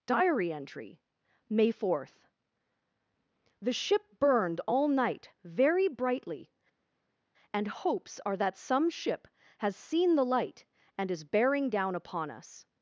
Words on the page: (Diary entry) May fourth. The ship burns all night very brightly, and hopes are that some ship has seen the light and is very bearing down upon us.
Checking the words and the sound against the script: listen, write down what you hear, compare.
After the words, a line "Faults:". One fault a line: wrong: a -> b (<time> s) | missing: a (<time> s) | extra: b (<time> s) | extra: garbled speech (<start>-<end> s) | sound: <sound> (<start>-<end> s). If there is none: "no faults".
(Diary entry) May fourth. The ship burned all night very brightly, and hopes are that some ship has seen the light and is bearing down upon us.
Faults:
wrong: burns -> burned (4.2 s)
missing: very (11.2 s)